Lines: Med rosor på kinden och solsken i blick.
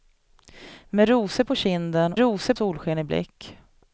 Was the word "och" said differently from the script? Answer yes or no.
yes